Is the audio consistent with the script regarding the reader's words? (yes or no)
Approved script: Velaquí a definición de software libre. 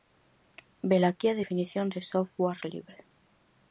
yes